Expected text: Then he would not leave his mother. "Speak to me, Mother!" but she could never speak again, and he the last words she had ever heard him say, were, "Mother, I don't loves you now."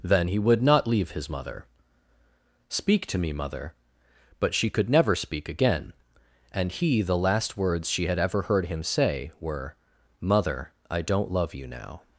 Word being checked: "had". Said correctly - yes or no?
yes